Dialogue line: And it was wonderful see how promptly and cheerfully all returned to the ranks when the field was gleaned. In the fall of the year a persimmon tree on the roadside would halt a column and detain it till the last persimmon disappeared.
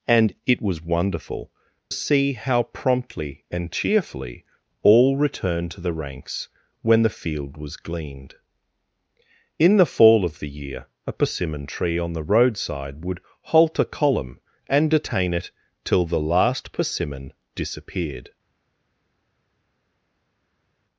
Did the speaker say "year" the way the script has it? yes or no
yes